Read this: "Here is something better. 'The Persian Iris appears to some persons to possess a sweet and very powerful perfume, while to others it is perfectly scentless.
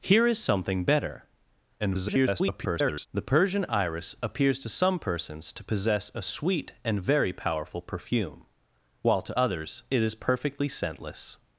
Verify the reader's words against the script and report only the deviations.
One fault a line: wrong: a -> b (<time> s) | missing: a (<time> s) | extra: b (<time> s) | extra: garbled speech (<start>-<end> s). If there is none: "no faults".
extra: garbled speech (1.8-3.1 s)